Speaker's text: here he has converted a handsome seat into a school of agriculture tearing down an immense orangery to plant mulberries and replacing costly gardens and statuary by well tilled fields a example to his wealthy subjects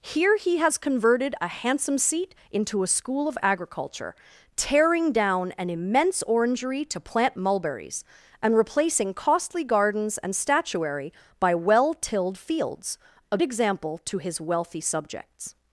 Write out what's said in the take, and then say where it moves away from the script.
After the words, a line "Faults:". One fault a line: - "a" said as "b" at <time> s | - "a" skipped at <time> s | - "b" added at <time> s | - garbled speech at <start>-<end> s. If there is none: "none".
here he has converted a handsome seat into a school of agriculture tearing down an immense orangery to plant mulberries and replacing costly gardens and statuary by well tilled fields a example to his wealthy subjects
Faults:
none